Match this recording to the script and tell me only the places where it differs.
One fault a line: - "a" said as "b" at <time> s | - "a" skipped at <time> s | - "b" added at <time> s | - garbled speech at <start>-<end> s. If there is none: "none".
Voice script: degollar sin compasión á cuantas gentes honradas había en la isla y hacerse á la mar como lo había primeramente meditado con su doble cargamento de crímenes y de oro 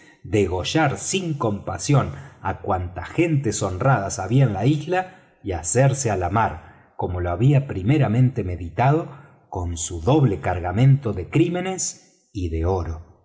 none